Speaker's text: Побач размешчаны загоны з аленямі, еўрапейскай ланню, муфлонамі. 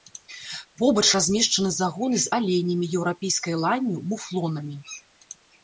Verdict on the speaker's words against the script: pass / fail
pass